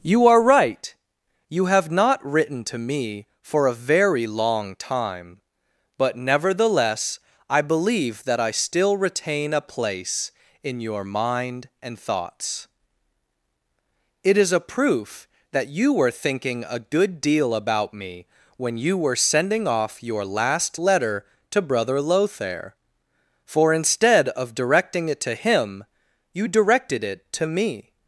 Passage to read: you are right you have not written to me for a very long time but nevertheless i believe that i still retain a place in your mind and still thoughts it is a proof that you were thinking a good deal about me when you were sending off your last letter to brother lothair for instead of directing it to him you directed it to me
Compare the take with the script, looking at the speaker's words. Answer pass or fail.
fail